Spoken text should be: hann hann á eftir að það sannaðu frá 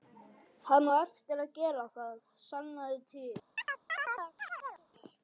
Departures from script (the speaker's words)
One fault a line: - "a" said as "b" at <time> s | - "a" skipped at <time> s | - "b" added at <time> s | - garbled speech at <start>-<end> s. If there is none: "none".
- "hann" skipped at 0.9 s
- "gera" added at 1.6 s
- "frá" said as "til" at 3.1 s